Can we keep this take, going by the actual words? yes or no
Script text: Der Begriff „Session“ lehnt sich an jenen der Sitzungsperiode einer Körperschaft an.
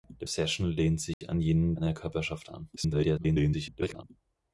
no